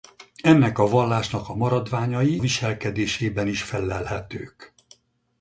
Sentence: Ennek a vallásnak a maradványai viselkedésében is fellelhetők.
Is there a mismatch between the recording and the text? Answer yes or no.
no